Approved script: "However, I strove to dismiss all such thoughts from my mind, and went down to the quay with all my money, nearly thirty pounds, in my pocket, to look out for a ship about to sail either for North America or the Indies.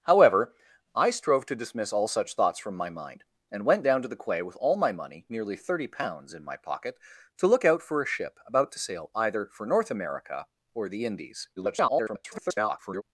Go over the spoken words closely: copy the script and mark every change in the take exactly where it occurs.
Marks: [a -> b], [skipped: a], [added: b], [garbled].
"However, I strove to dismiss all such thoughts from my mind, and went down to the quay with all my money, nearly thirty pounds, in my pocket, to look out for a ship about to sail either for North America or the Indies. [garbled]